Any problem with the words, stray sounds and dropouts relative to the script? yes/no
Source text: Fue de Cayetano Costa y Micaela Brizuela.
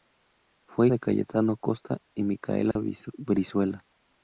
yes